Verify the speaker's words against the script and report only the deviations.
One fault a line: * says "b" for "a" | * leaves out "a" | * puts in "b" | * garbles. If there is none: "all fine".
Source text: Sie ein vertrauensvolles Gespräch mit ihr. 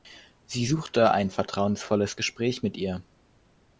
* puts in "suchte"